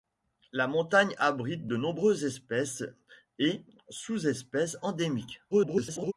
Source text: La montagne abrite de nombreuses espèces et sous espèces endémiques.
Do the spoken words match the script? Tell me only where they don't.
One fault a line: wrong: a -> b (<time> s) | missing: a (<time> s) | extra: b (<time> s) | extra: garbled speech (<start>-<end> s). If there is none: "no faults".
extra: garbled speech (5.5-6.1 s)